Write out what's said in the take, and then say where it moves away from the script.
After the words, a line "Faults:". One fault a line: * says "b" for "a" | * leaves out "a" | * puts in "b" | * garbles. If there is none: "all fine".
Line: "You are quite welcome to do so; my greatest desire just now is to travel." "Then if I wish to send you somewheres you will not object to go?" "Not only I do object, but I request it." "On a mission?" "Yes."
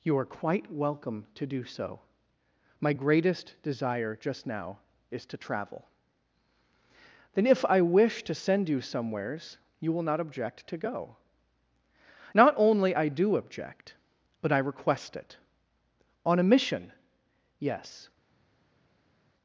"You are quite welcome to do so; my greatest desire just now is to travel." "Then if I wish to send you somewheres you will not object to go?" "Not only I do object, but I request it." "On a mission?" "Yes."
Faults:
all fine